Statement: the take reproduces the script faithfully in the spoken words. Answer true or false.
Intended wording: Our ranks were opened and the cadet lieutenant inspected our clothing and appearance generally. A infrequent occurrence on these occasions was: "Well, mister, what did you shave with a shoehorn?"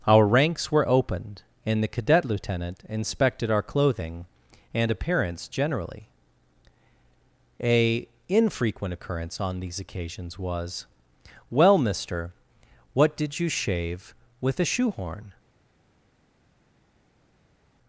true